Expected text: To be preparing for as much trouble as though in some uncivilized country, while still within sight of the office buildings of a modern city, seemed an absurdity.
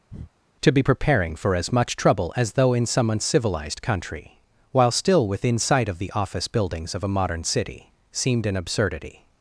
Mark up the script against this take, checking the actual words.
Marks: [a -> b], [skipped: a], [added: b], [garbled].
To be preparing for as much trouble as though in some uncivilized country, while still within sight of the office buildings of a modern city, seemed an absurdity.